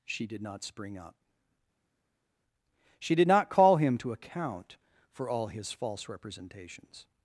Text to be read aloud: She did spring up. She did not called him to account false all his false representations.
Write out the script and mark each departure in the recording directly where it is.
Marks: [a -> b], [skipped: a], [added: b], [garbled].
She did [added: not] spring up. She did not [called -> call] him to account [false -> for] all his false representations.